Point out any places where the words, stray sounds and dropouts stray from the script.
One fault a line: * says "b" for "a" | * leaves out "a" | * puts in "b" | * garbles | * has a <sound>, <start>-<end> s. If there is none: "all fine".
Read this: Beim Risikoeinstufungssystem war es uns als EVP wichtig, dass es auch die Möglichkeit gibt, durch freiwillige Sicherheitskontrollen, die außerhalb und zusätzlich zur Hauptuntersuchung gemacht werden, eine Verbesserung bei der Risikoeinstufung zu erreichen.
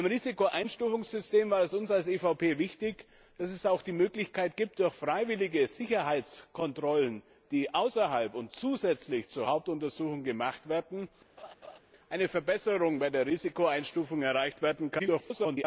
* has a laugh, 11.4-11.8 s
* garbles